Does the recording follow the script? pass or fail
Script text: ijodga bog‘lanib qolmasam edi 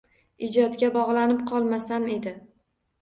pass